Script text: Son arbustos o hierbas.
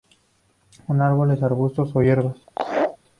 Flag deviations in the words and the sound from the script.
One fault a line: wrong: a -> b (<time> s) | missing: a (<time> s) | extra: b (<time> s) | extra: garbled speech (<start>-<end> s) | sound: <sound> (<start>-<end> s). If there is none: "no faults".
extra: árboles (1.0 s)
sound: laugh (2.5-3.0 s)